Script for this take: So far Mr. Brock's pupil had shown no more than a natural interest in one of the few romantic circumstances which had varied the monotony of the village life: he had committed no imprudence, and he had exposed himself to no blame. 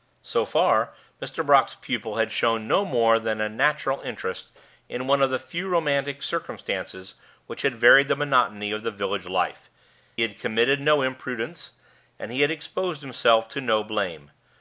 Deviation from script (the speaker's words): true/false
true